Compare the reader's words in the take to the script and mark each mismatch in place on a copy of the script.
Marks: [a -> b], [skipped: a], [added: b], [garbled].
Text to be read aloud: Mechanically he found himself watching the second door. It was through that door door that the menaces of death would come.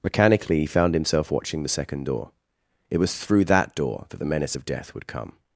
Mechanically he found himself watching the second door. It was through that door [skipped: door] that the [menaces -> menace] of death would come.